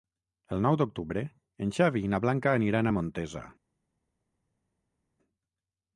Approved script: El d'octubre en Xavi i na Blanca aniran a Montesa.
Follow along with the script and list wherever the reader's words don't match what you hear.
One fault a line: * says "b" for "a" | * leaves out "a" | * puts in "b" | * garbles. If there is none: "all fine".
* puts in "nou"